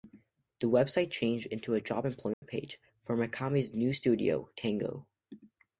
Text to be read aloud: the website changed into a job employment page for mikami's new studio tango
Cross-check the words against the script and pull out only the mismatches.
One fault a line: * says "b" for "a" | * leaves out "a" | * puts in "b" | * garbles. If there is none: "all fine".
all fine